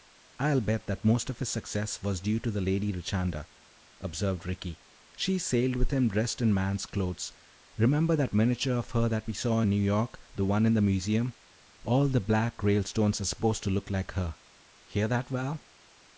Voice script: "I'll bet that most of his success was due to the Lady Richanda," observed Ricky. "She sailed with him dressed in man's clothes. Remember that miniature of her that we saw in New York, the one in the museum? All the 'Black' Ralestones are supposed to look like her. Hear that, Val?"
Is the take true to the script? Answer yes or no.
yes